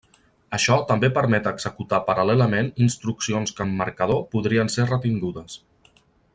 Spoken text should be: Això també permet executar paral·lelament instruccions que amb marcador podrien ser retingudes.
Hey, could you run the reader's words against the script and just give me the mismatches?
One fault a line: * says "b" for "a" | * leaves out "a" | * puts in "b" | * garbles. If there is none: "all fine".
all fine